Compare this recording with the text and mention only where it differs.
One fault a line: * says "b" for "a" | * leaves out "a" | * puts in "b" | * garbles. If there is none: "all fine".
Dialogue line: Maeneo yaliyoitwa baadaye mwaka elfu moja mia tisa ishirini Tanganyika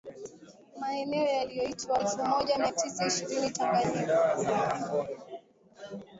* leaves out "baadaye mwaka"